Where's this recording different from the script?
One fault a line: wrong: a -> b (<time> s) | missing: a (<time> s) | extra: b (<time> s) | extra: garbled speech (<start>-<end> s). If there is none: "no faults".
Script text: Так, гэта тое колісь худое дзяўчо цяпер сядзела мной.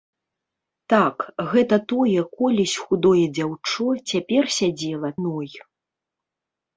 no faults